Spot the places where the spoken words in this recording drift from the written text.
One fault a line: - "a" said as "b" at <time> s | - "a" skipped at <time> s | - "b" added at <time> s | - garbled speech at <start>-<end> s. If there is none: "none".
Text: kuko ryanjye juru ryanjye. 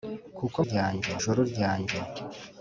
none